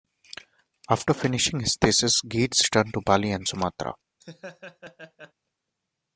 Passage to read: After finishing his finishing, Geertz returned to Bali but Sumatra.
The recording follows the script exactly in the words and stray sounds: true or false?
false